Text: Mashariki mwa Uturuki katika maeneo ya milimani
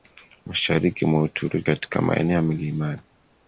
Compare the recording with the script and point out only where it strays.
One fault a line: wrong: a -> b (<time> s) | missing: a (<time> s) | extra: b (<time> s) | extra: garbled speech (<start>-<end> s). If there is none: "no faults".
no faults